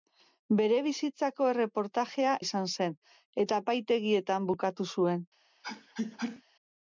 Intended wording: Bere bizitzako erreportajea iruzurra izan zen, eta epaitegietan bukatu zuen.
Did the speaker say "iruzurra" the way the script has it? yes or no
no